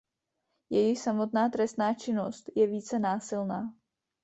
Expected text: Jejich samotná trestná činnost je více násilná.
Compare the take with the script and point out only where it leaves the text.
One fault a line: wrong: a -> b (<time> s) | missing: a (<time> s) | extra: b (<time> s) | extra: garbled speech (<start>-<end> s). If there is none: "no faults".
no faults